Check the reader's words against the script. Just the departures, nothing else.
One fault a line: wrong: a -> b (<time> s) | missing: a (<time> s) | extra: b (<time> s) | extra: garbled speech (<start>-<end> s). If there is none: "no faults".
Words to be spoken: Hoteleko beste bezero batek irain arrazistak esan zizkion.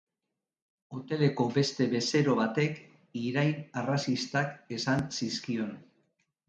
no faults